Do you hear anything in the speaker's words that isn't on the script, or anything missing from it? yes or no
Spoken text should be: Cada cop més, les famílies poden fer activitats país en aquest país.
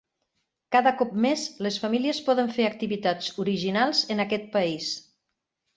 yes